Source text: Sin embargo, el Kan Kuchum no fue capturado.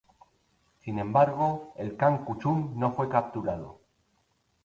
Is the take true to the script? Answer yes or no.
yes